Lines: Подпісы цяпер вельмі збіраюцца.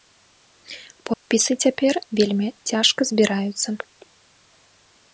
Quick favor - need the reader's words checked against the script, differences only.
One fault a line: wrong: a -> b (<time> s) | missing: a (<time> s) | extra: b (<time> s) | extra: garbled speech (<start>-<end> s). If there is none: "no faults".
extra: цяжка (2.7 s)